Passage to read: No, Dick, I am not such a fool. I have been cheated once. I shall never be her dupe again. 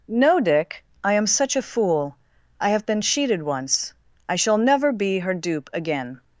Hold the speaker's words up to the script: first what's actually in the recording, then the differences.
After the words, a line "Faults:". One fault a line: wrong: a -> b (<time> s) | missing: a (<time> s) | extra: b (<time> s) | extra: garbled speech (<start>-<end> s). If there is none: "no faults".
No, Dick, I am such a fool. I have been cheated once. I shall never be her dupe again.
Faults:
missing: not (1.3 s)